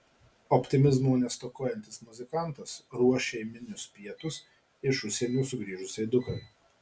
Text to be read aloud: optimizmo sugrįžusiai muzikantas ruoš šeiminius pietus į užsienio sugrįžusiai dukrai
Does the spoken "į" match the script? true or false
false